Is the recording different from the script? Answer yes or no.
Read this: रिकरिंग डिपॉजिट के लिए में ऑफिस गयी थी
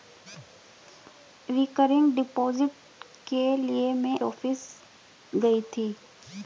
no